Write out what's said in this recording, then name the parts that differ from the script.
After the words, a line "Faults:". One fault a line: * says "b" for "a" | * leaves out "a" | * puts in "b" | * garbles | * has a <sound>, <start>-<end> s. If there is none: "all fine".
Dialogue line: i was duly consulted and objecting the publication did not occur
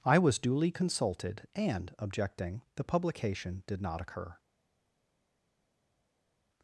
i was duly consulted and objecting the publication did not occur
Faults:
all fine